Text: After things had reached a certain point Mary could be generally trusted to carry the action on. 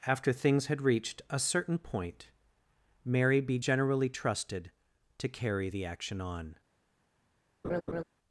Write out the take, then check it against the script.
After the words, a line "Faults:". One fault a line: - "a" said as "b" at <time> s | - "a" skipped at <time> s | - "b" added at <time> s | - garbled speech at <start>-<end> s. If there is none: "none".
After things had reached a certain point Mary be generally trusted to carry the action on.
Faults:
- "could" skipped at 3.4 s